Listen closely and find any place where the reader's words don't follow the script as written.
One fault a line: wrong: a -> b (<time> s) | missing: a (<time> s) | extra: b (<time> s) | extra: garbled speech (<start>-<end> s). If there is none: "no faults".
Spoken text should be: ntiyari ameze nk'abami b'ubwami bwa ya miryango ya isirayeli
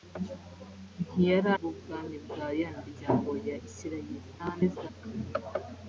missing: ameze nk'abami (1.5 s)
extra: garbled speech (4.4-4.9 s)